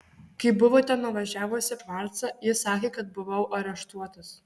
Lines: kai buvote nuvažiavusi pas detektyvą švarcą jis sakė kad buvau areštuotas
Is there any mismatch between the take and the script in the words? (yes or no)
yes